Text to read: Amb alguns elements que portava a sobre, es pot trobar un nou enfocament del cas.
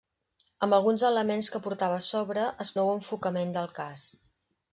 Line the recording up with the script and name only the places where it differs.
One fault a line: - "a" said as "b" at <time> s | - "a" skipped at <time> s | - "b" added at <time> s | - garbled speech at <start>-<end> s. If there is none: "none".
- "pot trobar un" skipped at 2.7 s